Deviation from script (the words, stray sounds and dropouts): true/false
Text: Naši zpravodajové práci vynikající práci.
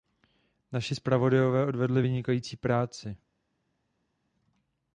true